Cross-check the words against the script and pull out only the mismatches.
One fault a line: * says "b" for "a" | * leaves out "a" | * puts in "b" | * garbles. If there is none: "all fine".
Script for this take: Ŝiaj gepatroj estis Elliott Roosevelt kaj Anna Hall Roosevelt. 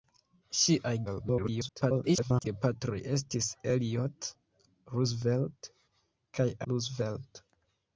* garbles
* leaves out "Anna Hall"